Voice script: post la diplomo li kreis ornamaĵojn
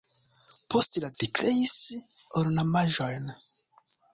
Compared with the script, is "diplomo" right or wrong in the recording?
wrong